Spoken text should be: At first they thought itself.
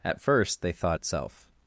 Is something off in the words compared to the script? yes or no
no